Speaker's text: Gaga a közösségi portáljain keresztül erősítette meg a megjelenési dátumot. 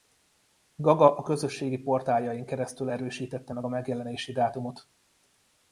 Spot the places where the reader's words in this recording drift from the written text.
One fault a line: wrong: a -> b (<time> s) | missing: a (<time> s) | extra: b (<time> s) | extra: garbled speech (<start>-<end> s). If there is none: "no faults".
no faults